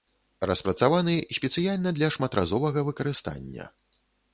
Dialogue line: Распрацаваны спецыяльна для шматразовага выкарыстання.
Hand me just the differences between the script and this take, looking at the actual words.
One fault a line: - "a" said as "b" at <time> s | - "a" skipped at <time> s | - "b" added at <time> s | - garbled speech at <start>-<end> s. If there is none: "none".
none